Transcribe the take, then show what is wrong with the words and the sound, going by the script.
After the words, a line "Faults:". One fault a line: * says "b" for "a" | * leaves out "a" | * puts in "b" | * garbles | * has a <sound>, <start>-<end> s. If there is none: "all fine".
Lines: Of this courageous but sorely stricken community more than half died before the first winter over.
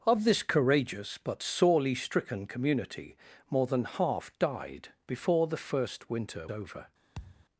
Of this courageous but sorely stricken community more than half died before the first winter over.
Faults:
* has a thud, 7.1-7.5 s